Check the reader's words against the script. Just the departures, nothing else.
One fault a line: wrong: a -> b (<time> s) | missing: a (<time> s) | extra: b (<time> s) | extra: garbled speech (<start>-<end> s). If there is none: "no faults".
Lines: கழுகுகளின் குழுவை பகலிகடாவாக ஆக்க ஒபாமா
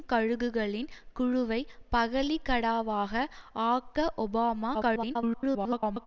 extra: garbled speech (4.7-6.1 s)